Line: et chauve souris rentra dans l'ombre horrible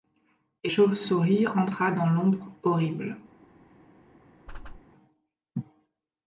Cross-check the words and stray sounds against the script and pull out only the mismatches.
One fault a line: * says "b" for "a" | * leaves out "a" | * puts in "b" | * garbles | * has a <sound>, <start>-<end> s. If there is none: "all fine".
* has a whoosh, 4.5-4.8 s